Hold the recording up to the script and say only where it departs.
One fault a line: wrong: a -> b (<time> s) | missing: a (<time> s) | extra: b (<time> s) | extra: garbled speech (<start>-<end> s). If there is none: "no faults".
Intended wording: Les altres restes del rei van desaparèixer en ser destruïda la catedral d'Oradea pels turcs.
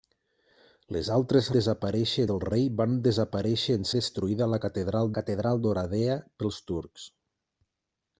wrong: restes -> desaparèixer (1.6 s)
missing: ser (3.9 s)
extra: catedral (5.2 s)